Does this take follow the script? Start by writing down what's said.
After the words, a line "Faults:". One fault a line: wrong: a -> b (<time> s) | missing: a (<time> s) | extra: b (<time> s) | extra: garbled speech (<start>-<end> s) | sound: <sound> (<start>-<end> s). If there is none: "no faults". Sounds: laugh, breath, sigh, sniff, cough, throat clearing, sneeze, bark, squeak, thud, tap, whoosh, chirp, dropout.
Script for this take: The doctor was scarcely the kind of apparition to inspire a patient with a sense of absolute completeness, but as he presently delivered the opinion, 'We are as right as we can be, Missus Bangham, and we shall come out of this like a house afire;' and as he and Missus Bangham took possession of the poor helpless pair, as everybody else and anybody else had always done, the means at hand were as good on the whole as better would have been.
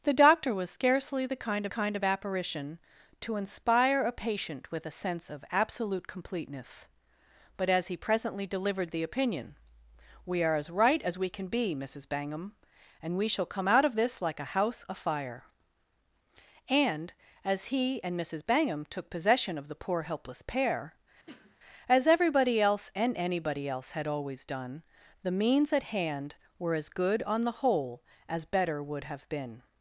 The doctor was scarcely the kind kind of apparition to inspire a patient with a sense of absolute completeness, but as he presently delivered the opinion, 'We are as right as we can be, Missus Bangham, and we shall come out of this like a house afire;' and as he and Missus Bangham took possession of the poor helpless pair, as everybody else and anybody else had always done, the means at hand were as good on the whole as better would have been.
Faults:
extra: kind (1.7 s)
sound: cough (21.3-21.6 s)